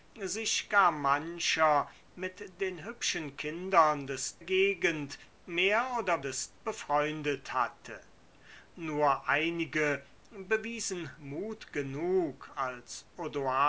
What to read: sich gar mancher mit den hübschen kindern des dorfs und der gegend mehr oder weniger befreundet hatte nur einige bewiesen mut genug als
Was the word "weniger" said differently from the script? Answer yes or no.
yes